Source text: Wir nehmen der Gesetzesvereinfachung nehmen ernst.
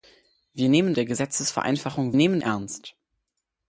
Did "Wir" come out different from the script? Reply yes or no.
no